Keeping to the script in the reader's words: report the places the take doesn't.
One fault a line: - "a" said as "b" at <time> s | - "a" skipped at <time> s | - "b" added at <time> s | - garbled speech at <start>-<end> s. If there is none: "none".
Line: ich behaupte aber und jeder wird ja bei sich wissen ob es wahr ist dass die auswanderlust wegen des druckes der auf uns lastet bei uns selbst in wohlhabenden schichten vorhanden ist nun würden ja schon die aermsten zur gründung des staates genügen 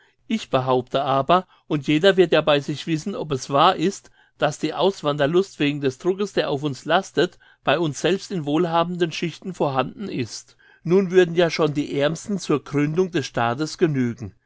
none